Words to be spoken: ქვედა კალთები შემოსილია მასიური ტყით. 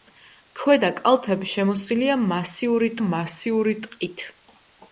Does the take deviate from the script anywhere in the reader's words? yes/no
yes